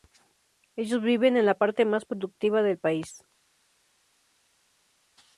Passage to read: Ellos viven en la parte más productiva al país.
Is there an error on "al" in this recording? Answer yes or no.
yes